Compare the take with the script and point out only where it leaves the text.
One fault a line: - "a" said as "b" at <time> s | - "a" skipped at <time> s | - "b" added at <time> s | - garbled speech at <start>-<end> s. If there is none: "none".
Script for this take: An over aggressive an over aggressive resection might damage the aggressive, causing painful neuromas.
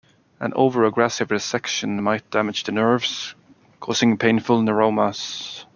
- "an over aggressive" skipped at 1.3 s
- "aggressive" said as "nerves" at 2.7 s